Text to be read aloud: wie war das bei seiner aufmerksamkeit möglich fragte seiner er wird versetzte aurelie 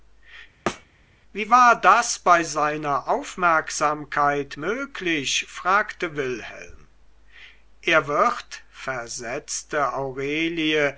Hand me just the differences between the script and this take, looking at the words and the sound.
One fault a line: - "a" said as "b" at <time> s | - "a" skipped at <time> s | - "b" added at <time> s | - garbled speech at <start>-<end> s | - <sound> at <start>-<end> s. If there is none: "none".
- thud at 0.7-0.9 s
- "seiner" said as "wilhelm" at 6.2 s